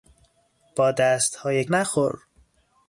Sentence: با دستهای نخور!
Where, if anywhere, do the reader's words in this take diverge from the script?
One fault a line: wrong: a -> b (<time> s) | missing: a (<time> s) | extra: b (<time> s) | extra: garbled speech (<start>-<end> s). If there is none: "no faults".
no faults